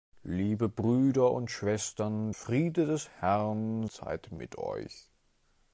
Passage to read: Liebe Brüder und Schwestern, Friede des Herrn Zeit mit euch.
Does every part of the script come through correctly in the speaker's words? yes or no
yes